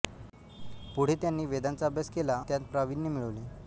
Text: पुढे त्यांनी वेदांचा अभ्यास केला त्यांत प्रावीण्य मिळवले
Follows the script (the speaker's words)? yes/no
yes